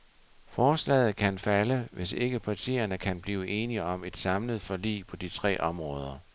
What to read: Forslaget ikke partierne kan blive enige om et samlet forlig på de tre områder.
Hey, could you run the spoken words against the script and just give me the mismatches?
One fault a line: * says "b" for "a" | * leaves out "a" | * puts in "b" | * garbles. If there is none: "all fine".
* puts in "kan falde hvis"